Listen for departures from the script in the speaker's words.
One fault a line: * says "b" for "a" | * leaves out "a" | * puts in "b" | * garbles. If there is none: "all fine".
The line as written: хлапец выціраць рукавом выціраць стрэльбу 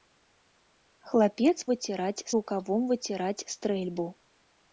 all fine